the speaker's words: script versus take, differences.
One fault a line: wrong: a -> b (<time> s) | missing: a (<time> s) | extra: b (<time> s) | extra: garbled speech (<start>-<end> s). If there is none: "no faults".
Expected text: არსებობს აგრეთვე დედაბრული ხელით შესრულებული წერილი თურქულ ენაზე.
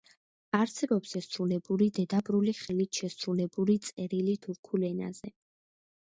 wrong: აგრეთვე -> შესრულებული (1.1 s)